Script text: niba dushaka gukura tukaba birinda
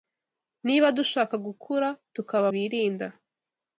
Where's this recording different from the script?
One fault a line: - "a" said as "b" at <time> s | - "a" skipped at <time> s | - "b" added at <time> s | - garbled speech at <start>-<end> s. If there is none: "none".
none